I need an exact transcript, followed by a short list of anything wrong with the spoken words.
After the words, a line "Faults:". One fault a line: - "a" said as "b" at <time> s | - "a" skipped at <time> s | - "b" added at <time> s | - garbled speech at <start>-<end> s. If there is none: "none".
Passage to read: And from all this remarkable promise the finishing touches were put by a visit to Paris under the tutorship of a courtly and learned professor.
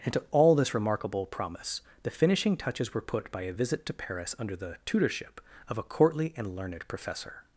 And to all this remarkable promise the finishing touches were put by a visit to Paris under the tutorship of a courtly and learned professor.
Faults:
- "from" said as "to" at 0.1 s